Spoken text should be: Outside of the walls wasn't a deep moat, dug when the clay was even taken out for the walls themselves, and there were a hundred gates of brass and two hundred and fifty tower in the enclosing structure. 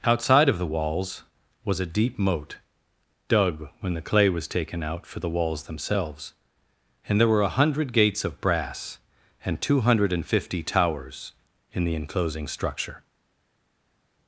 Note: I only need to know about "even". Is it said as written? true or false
false